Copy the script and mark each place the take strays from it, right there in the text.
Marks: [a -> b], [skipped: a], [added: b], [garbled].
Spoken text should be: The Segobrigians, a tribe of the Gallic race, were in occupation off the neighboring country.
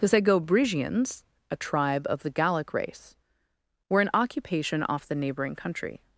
The Segobrigians, a tribe of the Gallic race, were in occupation off the neighboring country.